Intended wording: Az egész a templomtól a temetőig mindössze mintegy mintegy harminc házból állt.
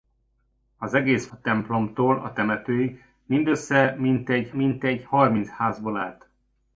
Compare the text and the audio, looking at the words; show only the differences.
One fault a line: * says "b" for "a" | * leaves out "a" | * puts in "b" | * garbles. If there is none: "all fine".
all fine